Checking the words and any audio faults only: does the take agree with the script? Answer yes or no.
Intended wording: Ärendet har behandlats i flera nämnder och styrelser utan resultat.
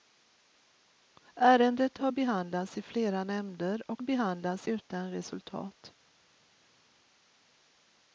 no